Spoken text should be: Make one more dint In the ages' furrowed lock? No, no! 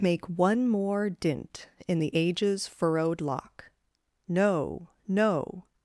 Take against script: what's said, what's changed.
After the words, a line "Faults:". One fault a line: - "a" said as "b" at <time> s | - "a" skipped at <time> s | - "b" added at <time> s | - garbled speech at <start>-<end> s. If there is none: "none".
Make one more dint In the ages' furrowed lock? No, no!
Faults:
none